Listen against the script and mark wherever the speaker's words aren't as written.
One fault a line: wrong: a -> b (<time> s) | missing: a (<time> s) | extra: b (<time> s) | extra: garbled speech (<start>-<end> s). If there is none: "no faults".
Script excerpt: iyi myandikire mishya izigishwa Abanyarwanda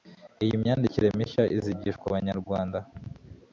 no faults